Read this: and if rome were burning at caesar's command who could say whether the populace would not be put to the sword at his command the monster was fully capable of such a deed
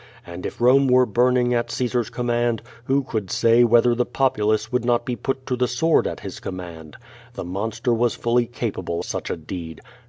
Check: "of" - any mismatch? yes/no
yes